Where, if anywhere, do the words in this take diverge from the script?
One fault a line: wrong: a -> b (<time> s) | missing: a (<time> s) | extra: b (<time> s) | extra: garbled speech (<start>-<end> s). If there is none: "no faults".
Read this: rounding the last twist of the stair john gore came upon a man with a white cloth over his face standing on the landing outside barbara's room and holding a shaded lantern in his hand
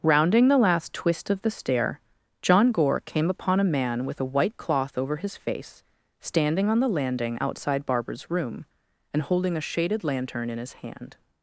no faults